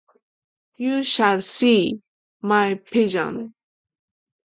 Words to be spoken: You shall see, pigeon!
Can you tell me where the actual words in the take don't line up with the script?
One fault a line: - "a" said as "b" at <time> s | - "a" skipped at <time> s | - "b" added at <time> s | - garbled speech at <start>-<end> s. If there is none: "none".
- "my" added at 2.4 s